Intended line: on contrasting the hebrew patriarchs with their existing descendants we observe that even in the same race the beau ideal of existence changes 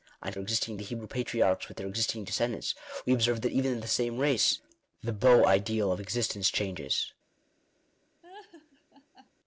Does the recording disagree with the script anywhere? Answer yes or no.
yes